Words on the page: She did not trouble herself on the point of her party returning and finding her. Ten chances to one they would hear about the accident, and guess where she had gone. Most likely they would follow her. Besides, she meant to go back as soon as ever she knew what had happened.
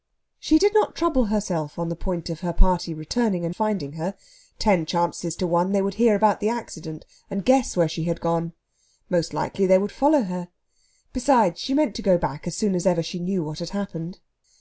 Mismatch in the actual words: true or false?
false